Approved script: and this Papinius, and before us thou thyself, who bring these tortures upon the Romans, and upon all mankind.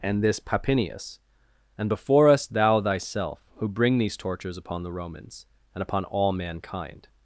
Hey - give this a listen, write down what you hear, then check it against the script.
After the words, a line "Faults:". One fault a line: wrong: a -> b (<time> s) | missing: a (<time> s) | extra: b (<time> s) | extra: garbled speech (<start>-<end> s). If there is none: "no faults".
and this Papinius, and before us thou thyself, who bring these tortures upon the Romans, and upon all mankind.
Faults:
no faults